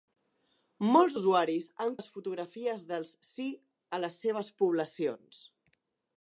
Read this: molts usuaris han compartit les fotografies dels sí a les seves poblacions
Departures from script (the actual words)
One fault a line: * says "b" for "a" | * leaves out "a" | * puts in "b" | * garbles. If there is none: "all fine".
* leaves out "compartit"